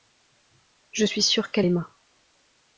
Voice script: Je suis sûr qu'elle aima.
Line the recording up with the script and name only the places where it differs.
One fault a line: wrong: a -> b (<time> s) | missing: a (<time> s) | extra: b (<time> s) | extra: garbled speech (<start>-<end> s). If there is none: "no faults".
no faults